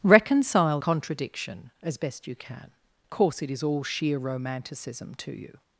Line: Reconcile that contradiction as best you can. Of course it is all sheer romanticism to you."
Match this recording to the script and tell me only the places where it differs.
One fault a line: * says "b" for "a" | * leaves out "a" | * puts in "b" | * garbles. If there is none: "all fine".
* leaves out "that"
* leaves out "Of"